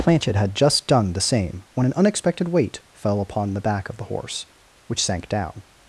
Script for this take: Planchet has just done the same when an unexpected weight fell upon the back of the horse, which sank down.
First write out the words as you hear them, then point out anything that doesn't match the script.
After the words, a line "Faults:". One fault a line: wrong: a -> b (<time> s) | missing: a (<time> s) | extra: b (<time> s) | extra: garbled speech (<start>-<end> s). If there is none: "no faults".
Planchet had just done the same when an unexpected weight fell upon the back of the horse, which sank down.
Faults:
wrong: has -> had (0.3 s)